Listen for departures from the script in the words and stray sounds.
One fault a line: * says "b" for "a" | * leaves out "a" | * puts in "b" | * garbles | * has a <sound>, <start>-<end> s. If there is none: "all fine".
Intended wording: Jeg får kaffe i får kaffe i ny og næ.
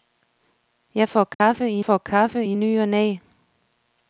* has a dropout, 1.3-1.4 s